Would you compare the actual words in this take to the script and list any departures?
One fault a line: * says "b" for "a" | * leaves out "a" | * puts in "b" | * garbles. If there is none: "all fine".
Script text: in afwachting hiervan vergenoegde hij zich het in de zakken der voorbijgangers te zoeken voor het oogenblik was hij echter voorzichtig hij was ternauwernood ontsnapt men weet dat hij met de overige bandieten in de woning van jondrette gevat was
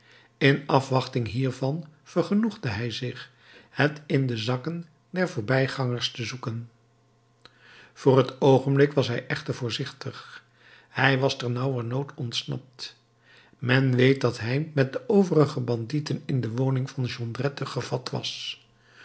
all fine